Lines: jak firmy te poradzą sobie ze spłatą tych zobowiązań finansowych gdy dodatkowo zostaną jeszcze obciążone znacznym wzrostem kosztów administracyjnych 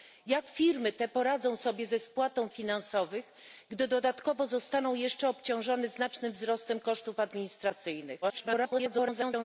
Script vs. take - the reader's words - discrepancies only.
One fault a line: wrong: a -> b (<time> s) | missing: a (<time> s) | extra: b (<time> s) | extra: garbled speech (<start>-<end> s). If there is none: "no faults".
missing: tych zobowiązań (2.5 s)
extra: garbled speech (8.2-9.4 s)